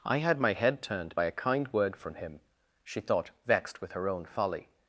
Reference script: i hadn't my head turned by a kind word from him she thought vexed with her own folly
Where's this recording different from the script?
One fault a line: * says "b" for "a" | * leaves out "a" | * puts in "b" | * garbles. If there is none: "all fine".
* says "had" for "hadn't"